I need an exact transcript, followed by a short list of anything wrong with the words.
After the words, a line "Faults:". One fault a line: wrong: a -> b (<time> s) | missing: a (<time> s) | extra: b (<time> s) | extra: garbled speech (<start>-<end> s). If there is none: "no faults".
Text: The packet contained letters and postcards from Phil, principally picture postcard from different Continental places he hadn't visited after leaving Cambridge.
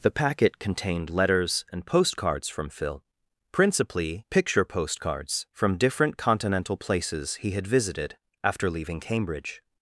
The packet contained letters and postcards from Phil, principally picture postcards from different Continental places he had visited after leaving Cambridge.
Faults:
wrong: postcard -> postcards (4.6 s)
wrong: hadn't -> had (7.5 s)